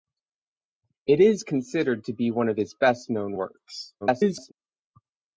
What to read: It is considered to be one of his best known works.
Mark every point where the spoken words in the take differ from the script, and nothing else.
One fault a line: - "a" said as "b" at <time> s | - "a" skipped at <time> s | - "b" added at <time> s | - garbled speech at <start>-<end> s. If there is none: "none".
- garbled speech at 4.0-4.5 s